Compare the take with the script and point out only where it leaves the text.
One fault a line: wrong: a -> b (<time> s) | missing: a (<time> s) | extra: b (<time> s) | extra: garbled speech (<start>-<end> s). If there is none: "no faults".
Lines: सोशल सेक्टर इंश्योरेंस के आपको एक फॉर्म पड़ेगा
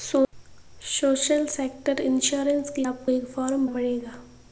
no faults